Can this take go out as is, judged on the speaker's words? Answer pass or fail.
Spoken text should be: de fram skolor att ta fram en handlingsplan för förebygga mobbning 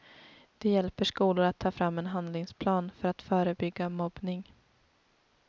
fail